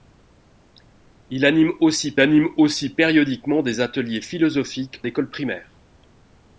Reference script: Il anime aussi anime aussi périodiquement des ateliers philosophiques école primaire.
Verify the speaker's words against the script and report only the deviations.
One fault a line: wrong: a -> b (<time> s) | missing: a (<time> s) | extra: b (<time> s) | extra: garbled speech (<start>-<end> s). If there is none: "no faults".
no faults